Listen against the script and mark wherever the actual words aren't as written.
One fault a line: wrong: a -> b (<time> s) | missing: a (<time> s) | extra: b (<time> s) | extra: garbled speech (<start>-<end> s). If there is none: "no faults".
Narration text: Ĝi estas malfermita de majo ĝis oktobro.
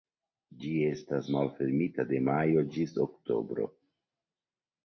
no faults